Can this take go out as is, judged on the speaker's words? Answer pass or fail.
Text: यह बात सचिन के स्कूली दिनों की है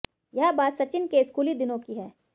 pass